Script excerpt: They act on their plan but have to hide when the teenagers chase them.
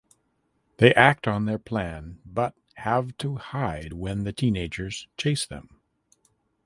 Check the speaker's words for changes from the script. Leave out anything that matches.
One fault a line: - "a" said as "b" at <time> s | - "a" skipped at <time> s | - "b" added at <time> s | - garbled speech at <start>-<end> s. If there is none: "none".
none